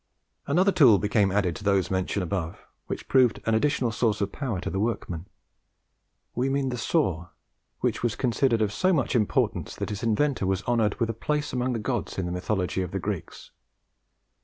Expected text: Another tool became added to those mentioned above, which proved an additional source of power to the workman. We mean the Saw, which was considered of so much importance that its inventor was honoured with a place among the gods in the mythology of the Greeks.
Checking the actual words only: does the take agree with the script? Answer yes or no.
yes